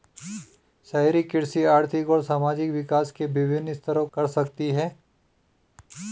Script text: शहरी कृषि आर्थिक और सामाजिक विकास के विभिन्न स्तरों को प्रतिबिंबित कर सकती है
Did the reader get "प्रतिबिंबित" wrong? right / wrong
wrong